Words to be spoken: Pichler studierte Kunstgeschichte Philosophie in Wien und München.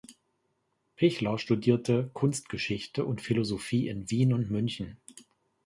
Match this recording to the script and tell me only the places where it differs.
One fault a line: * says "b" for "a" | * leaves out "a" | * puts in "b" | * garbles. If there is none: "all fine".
* puts in "und"